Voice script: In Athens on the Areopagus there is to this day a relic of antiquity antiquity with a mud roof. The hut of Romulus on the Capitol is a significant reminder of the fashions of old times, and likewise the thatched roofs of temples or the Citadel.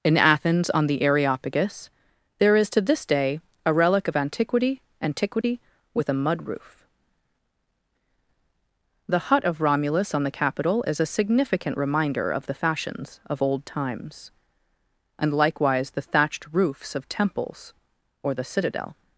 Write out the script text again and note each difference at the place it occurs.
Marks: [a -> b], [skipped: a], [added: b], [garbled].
In Athens on the Areopagus there is to this day a relic of antiquity antiquity with a mud roof. The hut of Romulus on the Capitol is a significant reminder of the fashions of old times, and likewise the thatched roofs of temples or the Citadel.